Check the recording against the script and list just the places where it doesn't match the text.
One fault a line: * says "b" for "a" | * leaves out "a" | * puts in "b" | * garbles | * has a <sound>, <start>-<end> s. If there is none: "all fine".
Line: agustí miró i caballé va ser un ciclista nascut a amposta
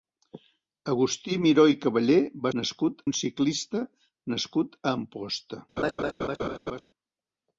* says "nascut" for "ser"
* has a laugh, 5.8-6.8 s